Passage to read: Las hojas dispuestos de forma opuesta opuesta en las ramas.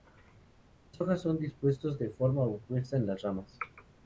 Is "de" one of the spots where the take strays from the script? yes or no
no